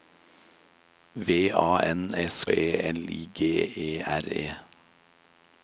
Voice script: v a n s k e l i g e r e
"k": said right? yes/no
no